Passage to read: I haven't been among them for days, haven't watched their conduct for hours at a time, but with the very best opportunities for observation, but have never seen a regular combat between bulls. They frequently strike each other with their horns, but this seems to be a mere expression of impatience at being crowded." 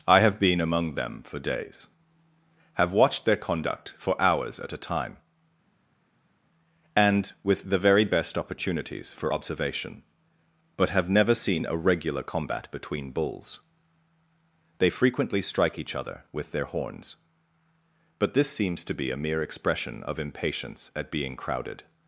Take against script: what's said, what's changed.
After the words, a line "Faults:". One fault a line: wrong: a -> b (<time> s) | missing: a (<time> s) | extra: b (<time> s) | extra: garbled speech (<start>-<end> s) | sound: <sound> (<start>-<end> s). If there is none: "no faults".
I have been among them for days, have watched their conduct for hours at a time, and with the very best opportunities for observation, but have never seen a regular combat between bulls. They frequently strike each other with their horns, but this seems to be a mere expression of impatience at being crowded."
Faults:
wrong: haven't -> have (0.2 s)
wrong: haven't -> have (2.7 s)
wrong: but -> and (6.9 s)